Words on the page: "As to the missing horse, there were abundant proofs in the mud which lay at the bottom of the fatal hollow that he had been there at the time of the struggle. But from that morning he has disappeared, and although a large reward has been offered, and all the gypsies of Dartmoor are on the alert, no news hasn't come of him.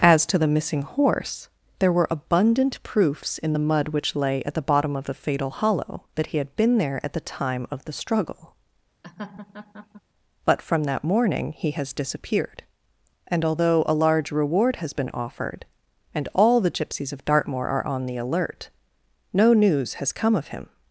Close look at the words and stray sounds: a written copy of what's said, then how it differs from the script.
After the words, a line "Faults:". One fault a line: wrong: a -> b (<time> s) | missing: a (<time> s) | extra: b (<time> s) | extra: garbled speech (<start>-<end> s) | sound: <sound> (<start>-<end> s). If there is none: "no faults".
"As to the missing horse, there were abundant proofs in the mud which lay at the bottom of the fatal hollow that he had been there at the time of the struggle. But from that morning he has disappeared, and although a large reward has been offered, and all the gypsies of Dartmoor are on the alert, no news has come of him.
Faults:
sound: laugh (9.0-10.0 s)
wrong: hasn't -> has (20.0 s)